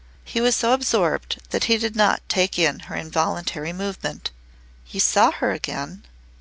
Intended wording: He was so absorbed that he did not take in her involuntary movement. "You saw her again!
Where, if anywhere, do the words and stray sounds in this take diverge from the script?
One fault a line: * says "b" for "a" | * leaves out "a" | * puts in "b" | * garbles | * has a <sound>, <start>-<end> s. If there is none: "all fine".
all fine